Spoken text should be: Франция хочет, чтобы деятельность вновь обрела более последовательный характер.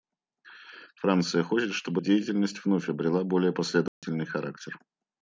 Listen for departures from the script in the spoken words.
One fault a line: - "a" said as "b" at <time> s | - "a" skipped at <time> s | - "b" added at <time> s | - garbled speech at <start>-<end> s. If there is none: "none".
none